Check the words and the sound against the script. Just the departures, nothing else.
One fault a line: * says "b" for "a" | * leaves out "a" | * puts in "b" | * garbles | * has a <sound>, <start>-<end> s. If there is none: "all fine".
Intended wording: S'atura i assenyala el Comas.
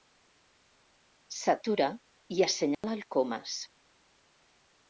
* has a dropout, 2.7-2.8 s